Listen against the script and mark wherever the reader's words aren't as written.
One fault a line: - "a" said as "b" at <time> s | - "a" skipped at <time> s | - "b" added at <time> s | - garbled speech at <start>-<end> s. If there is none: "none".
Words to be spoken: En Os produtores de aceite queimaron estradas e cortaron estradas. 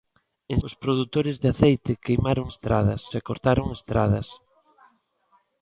none